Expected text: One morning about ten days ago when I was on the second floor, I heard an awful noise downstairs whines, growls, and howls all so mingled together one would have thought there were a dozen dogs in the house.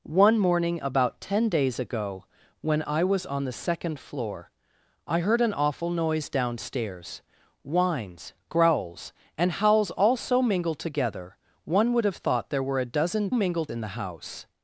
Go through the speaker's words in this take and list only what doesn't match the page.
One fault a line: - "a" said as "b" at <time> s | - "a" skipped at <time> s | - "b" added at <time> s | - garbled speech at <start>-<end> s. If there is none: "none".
- "dogs" said as "mingled" at 13.3 s